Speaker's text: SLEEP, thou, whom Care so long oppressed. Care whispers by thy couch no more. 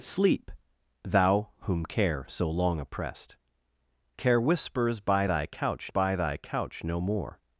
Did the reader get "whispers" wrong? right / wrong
right